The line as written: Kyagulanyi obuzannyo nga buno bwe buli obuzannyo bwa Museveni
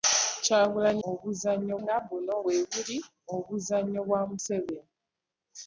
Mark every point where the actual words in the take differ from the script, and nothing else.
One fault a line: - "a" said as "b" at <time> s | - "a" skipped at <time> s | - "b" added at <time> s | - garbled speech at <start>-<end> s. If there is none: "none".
none